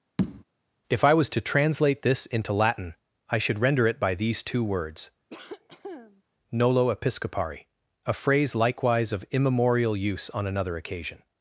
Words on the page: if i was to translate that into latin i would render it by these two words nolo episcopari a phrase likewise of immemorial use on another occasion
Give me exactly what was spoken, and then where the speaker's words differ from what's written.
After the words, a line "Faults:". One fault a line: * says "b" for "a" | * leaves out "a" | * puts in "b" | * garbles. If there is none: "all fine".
if i was to translate this into latin i should render it by these two words nolo episcopari a phrase likewise of immemorial use on another occasion
Faults:
* says "this" for "that"
* says "should" for "would"